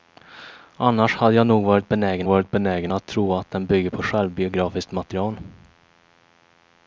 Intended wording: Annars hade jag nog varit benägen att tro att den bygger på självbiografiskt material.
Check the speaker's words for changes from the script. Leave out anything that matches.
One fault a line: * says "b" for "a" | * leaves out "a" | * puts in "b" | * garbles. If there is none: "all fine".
* puts in "varit benägen"